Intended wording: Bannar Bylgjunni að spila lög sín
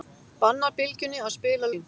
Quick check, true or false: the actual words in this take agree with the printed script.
false